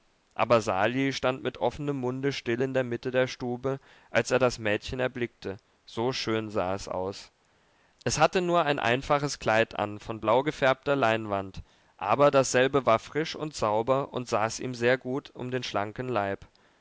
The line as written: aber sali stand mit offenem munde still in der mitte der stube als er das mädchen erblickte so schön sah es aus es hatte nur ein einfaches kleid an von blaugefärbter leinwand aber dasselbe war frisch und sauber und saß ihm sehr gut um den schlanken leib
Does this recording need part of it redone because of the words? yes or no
no